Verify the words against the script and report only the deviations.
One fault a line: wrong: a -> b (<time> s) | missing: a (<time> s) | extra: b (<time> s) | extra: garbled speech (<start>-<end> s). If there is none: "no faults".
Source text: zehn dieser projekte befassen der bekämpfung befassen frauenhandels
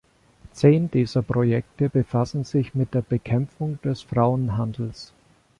extra: sich mit (2.4 s)
wrong: befassen -> des (3.8 s)